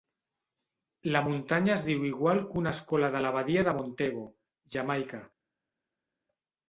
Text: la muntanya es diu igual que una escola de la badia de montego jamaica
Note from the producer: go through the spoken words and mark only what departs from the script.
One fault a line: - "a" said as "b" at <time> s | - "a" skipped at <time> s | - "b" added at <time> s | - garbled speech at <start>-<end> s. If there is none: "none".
none